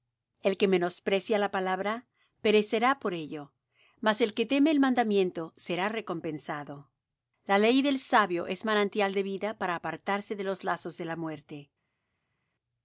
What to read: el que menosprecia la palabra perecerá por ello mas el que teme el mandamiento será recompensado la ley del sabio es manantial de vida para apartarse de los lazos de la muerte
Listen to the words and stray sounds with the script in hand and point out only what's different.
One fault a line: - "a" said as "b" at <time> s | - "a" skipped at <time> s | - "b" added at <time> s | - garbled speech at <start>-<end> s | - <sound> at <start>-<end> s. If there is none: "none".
none